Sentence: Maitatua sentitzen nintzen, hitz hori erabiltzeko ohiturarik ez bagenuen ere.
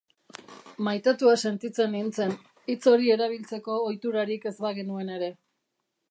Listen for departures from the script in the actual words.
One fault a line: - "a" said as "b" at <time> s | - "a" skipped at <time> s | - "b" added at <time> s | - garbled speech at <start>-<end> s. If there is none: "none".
none